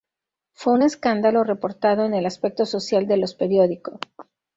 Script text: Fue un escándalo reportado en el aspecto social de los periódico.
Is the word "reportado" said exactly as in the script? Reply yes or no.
yes